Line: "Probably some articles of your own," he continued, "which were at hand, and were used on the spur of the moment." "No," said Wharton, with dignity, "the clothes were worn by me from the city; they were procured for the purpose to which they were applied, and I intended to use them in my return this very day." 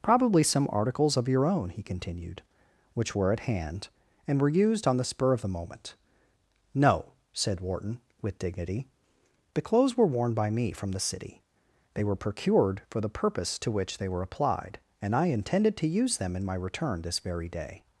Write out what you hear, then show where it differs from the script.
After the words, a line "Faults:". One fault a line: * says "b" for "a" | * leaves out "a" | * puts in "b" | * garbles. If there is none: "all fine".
"Probably some articles of your own," he continued, "which were at hand, and were used on the spur of the moment." "No," said Wharton, with dignity, "the clothes were worn by me from the city; they were procured for the purpose to which they were applied, and I intended to use them in my return this very day."
Faults:
all fine